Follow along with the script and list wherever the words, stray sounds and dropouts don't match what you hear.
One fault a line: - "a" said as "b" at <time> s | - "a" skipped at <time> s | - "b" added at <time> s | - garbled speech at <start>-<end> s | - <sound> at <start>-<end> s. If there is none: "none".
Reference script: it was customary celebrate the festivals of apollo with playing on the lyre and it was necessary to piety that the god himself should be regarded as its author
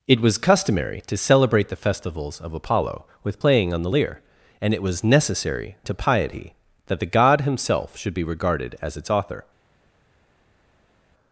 - "to" added at 1.1 s